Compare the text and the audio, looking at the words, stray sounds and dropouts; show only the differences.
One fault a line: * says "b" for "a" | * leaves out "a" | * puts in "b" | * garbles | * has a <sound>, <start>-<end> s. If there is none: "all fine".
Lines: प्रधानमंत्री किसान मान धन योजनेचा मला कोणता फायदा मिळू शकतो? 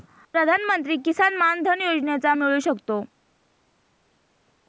* leaves out "मला कोणता फायदा"